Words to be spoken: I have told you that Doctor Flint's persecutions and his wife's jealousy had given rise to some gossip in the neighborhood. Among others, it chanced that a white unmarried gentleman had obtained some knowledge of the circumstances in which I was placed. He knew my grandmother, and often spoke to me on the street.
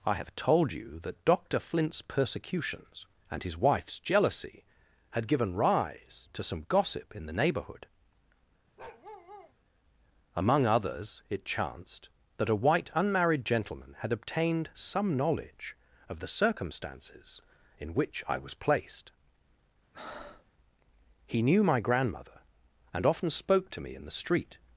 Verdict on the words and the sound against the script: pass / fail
fail